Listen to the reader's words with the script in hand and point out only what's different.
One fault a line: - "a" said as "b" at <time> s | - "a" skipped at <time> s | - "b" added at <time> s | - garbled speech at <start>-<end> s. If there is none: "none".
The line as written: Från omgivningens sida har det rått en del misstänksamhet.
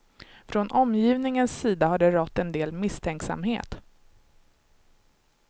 none